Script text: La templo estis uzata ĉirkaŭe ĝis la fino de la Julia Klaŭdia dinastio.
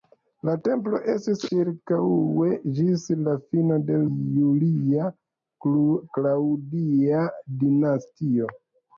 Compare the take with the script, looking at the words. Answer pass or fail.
fail